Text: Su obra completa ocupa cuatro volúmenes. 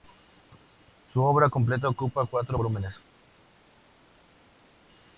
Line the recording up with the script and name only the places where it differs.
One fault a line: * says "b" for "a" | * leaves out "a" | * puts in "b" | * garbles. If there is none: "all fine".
all fine